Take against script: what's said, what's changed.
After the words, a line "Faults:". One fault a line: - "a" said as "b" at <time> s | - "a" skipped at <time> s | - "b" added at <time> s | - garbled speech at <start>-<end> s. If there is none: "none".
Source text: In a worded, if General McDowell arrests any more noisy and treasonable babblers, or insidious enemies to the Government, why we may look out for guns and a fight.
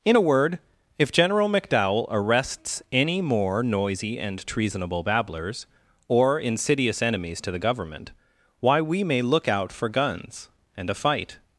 In a word, if General McDowell arrests any more noisy and treasonable babblers, or insidious enemies to the Government, why we may look out for guns and a fight.
Faults:
- "worded" said as "word" at 0.2 s